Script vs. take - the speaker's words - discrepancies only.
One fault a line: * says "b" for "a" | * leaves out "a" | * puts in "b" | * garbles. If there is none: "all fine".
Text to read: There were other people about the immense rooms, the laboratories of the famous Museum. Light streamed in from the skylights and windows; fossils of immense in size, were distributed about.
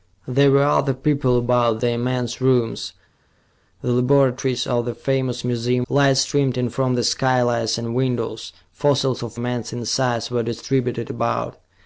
all fine